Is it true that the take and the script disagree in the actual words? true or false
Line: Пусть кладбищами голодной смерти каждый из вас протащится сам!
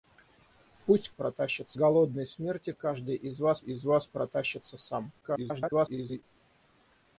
true